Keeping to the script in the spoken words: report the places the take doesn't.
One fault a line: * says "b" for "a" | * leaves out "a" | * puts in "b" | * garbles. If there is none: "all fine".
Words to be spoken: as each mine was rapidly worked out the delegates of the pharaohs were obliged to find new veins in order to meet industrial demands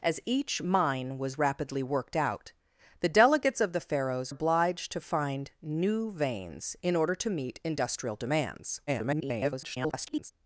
* leaves out "were"
* garbles